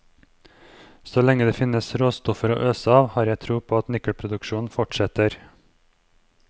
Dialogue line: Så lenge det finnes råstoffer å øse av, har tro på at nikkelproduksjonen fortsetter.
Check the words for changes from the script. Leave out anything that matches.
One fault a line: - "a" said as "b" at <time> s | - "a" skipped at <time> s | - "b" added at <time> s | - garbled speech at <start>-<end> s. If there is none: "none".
- "jeg" added at 3.3 s